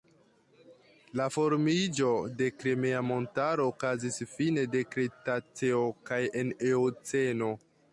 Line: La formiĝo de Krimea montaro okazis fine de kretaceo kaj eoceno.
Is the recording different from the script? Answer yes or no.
yes